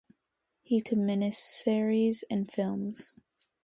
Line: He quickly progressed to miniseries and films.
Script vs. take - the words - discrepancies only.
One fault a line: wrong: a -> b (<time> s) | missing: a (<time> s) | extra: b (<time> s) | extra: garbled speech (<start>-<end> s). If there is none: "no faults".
missing: quickly progressed (0.8 s)